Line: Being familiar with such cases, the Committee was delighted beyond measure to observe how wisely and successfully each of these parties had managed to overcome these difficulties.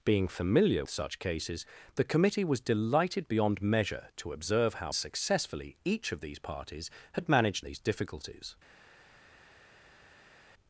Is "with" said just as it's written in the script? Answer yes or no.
no